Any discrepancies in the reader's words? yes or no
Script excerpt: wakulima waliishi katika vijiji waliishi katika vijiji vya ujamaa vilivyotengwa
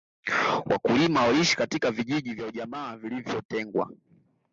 yes